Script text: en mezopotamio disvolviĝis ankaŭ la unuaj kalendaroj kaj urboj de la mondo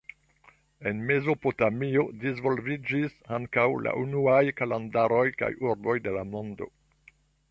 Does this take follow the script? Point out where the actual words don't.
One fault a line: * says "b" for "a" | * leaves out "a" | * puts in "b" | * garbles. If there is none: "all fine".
all fine